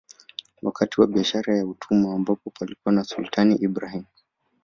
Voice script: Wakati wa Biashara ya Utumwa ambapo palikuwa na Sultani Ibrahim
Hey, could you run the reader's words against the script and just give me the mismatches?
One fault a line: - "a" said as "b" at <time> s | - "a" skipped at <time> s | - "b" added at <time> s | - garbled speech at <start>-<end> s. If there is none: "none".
none